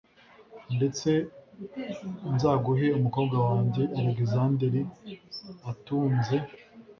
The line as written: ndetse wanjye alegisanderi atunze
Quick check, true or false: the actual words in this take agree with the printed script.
false